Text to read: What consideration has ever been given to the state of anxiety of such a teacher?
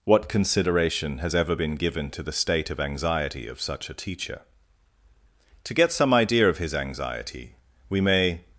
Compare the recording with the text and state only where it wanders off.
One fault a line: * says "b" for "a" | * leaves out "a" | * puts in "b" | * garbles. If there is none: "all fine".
* puts in "To get some idea of his anxiety we may"